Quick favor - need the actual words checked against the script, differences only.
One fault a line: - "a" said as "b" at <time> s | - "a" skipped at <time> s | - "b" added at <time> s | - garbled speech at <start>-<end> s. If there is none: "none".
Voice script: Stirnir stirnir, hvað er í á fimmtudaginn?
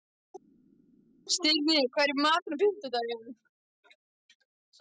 - "stirnir" skipped at 1.8 s
- "matinn" added at 2.2 s